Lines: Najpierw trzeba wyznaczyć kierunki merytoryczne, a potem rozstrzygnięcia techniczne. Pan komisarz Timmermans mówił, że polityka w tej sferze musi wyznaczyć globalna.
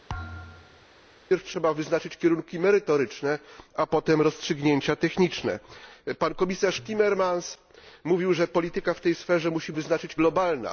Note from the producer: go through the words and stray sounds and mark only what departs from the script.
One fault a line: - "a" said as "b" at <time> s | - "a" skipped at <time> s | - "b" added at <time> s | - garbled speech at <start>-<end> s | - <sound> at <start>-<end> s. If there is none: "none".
- thud at 0.1-0.9 s